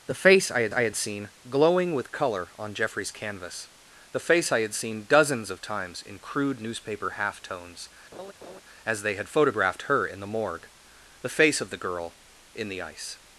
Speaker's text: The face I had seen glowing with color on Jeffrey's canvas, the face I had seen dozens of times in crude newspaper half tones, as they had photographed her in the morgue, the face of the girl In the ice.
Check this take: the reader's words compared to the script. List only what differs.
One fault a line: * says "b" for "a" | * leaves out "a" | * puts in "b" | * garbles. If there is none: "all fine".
* puts in "I had"